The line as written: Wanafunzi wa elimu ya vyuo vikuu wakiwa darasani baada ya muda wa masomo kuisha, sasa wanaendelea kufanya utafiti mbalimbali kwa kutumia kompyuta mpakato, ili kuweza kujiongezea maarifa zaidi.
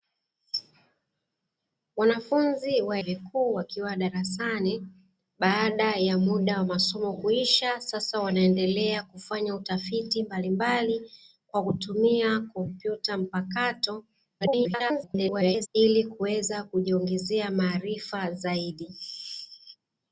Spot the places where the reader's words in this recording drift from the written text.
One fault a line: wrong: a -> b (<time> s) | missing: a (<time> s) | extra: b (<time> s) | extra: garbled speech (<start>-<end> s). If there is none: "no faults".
missing: elimu ya vyuo (3.0 s)
extra: garbled speech (14.4-15.7 s)